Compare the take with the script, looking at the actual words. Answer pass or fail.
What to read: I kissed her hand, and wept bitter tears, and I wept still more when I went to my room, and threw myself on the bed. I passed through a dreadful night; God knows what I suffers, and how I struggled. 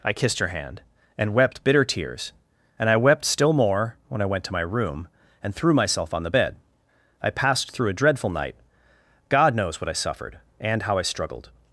fail